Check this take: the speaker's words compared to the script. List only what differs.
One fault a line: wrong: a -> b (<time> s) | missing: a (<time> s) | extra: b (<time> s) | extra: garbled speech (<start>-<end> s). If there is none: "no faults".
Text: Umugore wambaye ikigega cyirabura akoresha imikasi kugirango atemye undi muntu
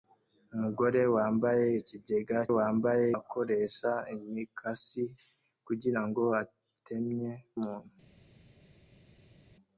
wrong: cyirabura -> wambaye (2.6 s)
missing: undi (7.3 s)